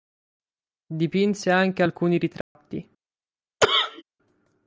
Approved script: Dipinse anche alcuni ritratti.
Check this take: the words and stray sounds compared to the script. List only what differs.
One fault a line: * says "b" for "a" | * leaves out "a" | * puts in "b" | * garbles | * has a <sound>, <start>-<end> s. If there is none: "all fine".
* has a dropout, 2.4-2.6 s
* has a cough, 3.6-4.0 s